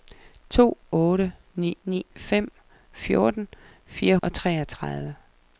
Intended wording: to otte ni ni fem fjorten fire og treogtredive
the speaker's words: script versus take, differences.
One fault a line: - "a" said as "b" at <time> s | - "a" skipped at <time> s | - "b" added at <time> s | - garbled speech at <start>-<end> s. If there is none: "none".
none